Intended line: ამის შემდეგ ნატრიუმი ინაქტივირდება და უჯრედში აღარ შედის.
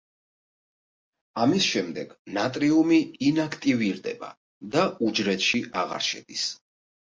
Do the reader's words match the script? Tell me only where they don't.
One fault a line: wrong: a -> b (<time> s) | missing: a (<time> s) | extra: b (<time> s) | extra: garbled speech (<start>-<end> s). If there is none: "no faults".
no faults